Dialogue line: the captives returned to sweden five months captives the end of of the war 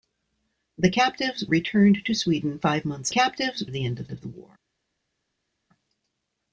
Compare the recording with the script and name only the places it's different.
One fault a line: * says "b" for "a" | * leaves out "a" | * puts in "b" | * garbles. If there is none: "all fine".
all fine